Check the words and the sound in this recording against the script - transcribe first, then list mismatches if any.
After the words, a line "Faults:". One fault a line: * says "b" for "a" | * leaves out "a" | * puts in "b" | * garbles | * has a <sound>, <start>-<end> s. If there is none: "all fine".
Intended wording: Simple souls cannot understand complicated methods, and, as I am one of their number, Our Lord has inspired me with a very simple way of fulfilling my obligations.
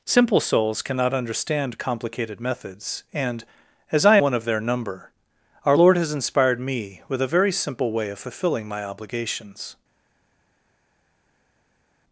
Simple souls cannot understand complicated methods, and, as I one of their number, Our Lord has inspired me with a very simple way of fulfilling my obligations.
Faults:
* leaves out "am"